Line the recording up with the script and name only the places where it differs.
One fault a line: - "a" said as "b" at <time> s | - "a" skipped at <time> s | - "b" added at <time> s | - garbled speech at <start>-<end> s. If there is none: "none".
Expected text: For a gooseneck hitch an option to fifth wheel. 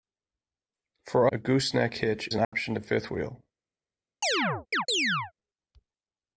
none